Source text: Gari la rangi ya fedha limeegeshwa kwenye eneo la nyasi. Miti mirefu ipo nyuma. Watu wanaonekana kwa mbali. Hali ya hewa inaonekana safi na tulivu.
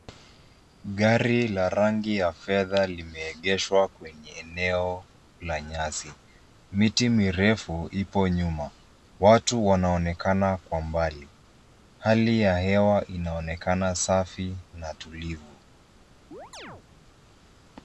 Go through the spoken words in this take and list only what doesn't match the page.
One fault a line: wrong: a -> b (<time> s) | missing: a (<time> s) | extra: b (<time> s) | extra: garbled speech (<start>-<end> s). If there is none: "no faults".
no faults